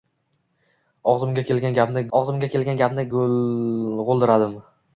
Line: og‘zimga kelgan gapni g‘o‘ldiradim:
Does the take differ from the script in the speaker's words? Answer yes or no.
yes